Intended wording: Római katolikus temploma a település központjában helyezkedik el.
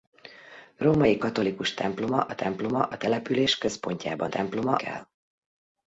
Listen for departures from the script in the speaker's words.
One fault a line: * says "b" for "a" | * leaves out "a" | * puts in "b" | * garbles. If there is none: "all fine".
* puts in "temploma a"
* says "temploma" for "helyezkedik"